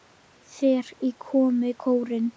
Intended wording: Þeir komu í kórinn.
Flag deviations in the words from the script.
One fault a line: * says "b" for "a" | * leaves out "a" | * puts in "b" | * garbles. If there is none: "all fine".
all fine